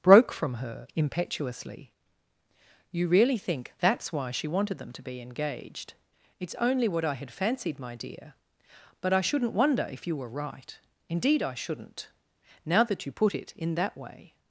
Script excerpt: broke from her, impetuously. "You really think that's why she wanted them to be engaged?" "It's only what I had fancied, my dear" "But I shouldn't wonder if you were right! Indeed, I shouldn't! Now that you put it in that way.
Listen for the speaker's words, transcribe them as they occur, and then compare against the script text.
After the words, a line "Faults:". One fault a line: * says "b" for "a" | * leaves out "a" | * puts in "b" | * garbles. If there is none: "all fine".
broke from her, impetuously. "You really think that's why she wanted them to be engaged?" "It's only what I had fancied, my dear" "But I shouldn't wonder if you were right! Indeed, I shouldn't! Now that you put it in that way.
Faults:
all fine